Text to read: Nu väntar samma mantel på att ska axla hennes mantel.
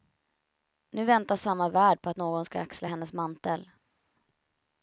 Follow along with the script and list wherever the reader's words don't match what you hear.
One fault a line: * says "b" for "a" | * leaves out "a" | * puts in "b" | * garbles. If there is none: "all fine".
* says "värld" for "mantel"
* puts in "någon"